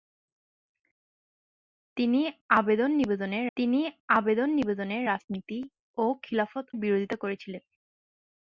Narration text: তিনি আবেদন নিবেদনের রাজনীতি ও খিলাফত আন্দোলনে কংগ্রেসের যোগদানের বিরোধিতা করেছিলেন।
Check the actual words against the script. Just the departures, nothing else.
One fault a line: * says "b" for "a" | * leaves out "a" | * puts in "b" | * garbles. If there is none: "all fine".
* puts in "তিনি আবেদন নিবেদনের"
* leaves out "আন্দোলনে কংগ্রেসের যোগদানের"